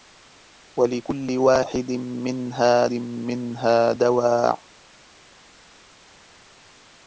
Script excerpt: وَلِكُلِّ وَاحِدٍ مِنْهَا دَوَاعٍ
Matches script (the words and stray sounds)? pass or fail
fail